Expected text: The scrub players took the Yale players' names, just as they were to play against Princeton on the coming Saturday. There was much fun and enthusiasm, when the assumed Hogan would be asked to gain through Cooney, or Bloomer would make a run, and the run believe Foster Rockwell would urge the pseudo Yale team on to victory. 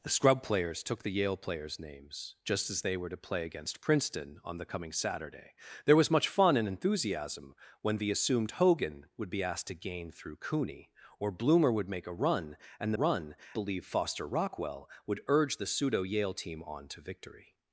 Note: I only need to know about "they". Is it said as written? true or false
true